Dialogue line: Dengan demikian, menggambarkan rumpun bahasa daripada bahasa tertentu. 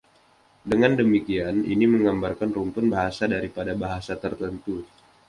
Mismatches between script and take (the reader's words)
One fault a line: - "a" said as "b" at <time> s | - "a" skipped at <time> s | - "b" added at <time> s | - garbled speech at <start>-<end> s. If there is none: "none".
- "ini" added at 1.6 s